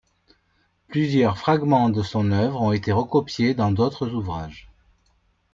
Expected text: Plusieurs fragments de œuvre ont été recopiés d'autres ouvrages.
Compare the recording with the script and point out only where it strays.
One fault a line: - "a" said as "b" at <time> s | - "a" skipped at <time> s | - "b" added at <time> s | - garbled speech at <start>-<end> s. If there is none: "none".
- "son" added at 2.0 s
- "dans" added at 3.5 s